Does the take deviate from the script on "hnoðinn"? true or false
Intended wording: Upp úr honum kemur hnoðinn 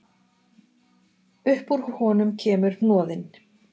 false